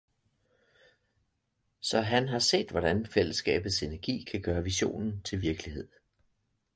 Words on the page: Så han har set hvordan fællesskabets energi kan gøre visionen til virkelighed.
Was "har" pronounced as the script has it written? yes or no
yes